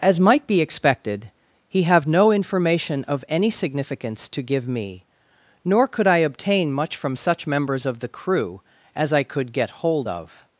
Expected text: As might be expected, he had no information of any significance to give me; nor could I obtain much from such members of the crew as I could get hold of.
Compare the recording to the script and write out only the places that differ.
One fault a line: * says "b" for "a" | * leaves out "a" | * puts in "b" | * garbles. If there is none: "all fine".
* says "have" for "had"